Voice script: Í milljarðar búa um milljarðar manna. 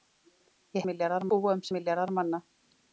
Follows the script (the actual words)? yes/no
yes